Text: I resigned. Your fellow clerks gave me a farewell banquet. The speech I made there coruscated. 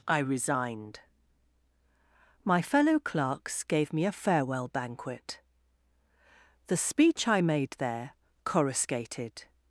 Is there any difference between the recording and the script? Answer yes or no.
yes